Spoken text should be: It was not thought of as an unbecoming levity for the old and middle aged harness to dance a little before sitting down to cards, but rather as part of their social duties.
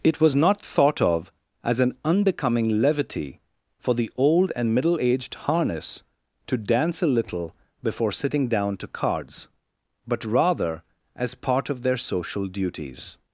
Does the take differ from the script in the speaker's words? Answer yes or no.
no